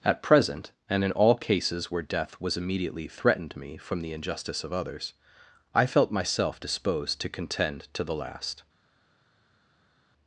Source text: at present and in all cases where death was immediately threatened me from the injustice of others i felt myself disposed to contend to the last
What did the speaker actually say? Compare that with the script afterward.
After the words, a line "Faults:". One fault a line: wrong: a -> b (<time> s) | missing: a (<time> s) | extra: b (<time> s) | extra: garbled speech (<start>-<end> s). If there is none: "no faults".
at present and in all cases where death was immediately threatened me from the injustice of others i felt myself disposed to contend to the last
Faults:
no faults